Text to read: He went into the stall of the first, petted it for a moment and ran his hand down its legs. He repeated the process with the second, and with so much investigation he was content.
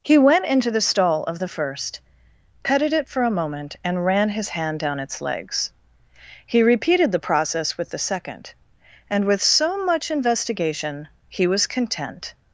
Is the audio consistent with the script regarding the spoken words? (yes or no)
yes